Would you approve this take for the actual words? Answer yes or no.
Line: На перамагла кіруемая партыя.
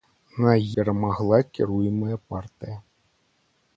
yes